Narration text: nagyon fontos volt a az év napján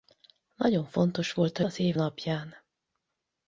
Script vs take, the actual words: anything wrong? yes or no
no